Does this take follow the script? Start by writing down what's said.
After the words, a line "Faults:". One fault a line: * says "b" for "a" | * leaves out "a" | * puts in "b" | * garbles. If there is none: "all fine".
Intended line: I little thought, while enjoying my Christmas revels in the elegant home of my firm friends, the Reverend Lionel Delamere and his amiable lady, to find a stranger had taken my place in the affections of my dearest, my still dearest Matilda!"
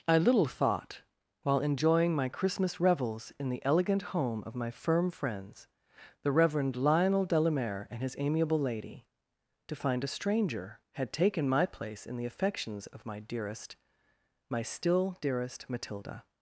I little thought, while enjoying my Christmas revels in the elegant home of my firm friends, the Reverend Lionel Delamere and his amiable lady, to find a stranger had taken my place in the affections of my dearest, my still dearest Matilda!"
Faults:
all fine